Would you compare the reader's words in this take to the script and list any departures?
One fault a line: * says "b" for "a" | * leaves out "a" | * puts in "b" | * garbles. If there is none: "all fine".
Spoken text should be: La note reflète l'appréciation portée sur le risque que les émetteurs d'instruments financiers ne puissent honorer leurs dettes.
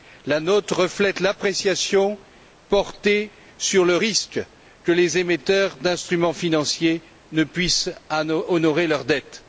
all fine